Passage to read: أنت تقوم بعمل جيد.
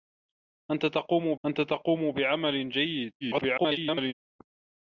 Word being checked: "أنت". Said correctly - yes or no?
yes